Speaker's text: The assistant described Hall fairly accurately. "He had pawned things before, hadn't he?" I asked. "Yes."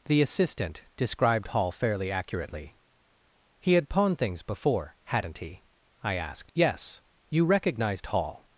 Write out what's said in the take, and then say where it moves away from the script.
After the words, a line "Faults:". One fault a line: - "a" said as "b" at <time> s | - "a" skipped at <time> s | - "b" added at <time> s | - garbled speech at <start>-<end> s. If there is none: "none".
The assistant described Hall fairly accurately. "He had pawned things before, hadn't he?" I asked. "Yes." "You recognized Hall
Faults:
- "You recognized Hall" added at 7.3 s